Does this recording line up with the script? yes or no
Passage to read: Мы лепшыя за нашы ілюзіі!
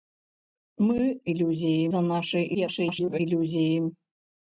no